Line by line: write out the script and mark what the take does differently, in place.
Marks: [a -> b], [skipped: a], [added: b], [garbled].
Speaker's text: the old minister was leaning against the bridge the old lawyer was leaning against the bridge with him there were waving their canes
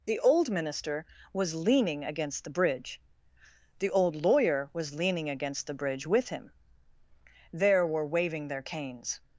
the old minister was leaning against the bridge the old lawyer was leaning against the bridge with him there were waving their canes